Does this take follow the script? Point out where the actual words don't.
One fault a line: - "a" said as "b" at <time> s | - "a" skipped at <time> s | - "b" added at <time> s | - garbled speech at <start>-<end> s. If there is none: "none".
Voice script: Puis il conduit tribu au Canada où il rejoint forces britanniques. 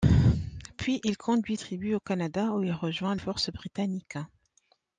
none